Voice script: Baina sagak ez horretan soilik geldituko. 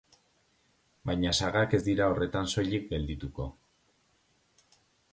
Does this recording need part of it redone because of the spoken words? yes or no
yes